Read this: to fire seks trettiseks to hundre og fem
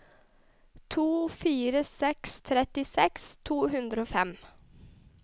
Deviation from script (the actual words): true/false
false